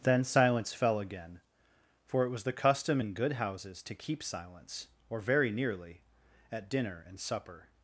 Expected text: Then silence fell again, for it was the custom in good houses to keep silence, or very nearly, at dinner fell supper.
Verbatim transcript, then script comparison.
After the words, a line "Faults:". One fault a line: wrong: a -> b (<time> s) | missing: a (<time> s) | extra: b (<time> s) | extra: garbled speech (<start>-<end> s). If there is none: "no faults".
Then silence fell again, for it was the custom in good houses to keep silence, or very nearly, at dinner and supper.
Faults:
wrong: fell -> and (7.1 s)